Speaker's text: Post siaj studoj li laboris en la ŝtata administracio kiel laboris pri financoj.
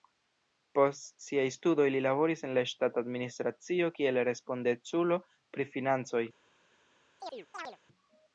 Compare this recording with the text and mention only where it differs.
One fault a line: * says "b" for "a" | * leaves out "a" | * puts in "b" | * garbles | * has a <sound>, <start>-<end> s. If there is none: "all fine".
* says "respondeculo" for "laboris"
* has a chirp, 7.2-7.8 s